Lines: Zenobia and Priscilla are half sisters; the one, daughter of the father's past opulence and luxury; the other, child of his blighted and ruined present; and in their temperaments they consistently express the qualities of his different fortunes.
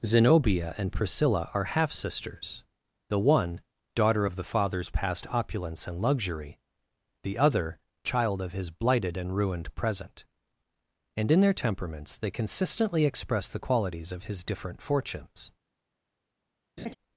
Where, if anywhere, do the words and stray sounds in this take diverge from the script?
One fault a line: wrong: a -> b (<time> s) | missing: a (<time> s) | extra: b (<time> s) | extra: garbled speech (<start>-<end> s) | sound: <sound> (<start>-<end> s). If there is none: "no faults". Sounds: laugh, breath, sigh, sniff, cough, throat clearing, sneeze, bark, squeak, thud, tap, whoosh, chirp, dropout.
sound: laugh (16.8-17.0 s)